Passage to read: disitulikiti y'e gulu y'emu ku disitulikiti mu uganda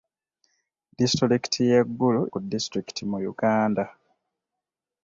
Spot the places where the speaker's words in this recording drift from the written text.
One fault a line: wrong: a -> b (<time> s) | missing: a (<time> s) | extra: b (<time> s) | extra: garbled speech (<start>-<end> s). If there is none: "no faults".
missing: y'emu (2.2 s)